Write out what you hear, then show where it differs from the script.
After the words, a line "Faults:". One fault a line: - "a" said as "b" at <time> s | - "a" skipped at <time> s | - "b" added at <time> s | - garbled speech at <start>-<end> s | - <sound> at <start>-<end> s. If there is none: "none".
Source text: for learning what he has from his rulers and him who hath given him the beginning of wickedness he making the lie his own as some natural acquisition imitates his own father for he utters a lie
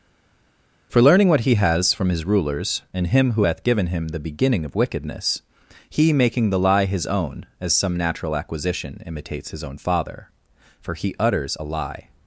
for learning what he has from his rulers and him who hath given him the beginning of wickedness he making the lie his own as some natural acquisition imitates his own father for he utters a lie
Faults:
none